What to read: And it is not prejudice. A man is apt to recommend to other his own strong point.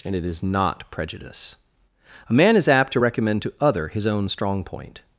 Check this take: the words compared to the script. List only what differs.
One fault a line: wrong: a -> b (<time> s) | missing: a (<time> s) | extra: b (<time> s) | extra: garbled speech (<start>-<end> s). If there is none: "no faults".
no faults